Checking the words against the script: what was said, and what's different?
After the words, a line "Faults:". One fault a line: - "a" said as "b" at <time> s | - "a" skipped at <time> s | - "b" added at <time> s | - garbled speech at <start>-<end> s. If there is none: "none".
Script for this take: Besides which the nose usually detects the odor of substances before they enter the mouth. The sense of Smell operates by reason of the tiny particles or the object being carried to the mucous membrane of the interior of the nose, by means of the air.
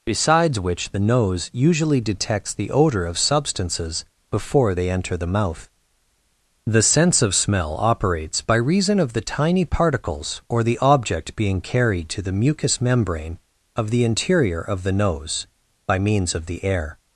Besides which the nose usually detects the odor of substances before they enter the mouth. The sense of Smell operates by reason of the tiny particles or the object being carried to the mucous membrane of the interior of the nose, by means of the air.
Faults:
none